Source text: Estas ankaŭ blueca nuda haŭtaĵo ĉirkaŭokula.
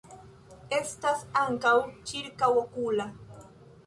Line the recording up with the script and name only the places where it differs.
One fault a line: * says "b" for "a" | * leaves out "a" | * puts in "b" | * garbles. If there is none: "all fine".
* leaves out "blueca nuda haŭtaĵo"